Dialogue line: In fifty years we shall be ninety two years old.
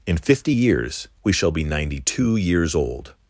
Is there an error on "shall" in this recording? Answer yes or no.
no